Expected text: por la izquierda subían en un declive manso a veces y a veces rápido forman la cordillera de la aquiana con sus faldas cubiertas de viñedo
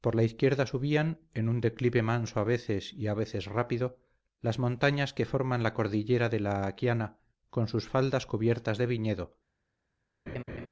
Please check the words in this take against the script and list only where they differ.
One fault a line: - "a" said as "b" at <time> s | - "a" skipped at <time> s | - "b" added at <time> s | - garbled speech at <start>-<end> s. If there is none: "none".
- "las montañas que" added at 4.4 s